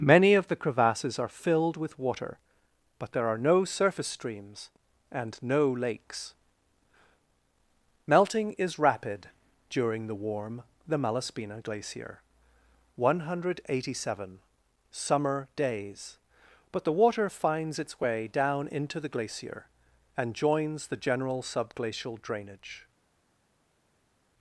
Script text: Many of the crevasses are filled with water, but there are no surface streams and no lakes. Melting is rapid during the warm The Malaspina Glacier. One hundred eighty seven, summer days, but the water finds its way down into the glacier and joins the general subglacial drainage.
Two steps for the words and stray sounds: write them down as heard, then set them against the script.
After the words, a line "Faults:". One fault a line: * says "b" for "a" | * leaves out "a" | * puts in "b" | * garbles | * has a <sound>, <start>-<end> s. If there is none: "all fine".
Many of the crevasses are filled with water, but there are no surface streams and no lakes. Melting is rapid during the warm The Malaspina Glacier. One hundred eighty seven, summer days, but the water finds its way down into the glacier and joins the general subglacial drainage.
Faults:
all fine